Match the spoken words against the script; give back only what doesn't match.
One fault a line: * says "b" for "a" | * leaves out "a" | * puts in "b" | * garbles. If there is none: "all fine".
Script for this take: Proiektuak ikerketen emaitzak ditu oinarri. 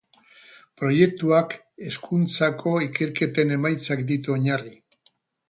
* puts in "hezkuntzako"